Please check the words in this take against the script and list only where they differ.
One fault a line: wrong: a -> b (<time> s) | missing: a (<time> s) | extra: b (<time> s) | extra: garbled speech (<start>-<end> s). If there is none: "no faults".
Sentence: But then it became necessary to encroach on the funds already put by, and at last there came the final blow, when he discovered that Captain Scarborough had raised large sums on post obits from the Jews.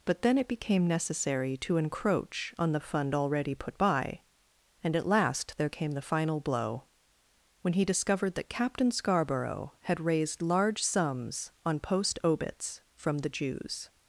wrong: funds -> fund (2.8 s)